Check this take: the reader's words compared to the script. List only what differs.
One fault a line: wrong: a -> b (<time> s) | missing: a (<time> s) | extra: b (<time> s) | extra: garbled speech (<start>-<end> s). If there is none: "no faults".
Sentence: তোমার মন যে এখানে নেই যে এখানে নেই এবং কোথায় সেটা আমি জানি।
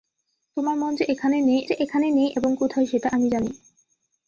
no faults